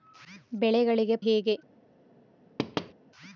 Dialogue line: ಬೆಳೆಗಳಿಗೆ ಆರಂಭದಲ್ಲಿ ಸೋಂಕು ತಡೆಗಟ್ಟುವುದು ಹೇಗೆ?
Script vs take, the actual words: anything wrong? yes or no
yes